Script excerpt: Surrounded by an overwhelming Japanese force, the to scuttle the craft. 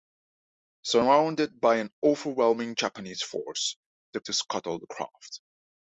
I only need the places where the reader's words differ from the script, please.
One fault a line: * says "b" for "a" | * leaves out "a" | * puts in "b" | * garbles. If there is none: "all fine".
all fine